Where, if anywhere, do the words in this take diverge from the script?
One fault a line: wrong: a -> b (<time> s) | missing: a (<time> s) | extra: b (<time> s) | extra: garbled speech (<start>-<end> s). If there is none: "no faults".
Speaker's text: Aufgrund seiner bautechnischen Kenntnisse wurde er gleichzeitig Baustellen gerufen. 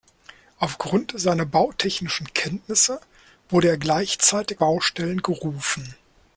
no faults